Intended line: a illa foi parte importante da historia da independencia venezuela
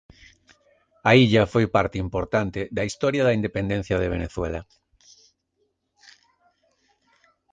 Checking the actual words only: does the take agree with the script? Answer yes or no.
no